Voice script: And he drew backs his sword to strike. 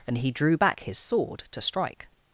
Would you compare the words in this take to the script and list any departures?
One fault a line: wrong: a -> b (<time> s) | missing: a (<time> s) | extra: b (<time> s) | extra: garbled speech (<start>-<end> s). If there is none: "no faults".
wrong: backs -> back (0.6 s)